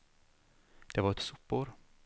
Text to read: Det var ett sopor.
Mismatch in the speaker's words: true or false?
false